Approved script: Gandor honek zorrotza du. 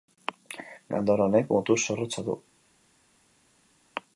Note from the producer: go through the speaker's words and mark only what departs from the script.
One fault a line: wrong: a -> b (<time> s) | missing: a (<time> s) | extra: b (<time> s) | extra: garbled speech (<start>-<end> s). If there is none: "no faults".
extra: mutur (1.6 s)